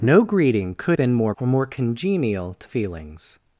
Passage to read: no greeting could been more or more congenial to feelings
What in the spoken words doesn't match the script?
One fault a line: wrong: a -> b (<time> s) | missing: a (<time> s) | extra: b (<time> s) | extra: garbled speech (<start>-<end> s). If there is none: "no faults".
no faults